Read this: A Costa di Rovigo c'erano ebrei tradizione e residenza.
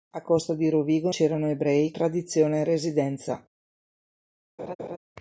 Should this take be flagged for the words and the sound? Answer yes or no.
yes